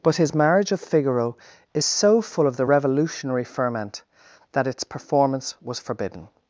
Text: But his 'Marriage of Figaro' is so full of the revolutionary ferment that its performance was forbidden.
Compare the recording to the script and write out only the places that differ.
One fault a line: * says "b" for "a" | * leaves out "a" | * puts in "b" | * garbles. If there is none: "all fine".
all fine